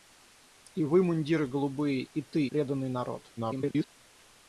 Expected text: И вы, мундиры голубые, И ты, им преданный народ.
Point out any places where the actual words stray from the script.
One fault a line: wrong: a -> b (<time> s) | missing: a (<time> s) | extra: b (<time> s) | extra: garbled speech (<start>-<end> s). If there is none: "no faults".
missing: им (2.5 s)
extra: garbled speech (3.4-3.9 s)